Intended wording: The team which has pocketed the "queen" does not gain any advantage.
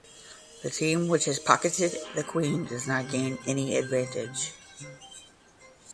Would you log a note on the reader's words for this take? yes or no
no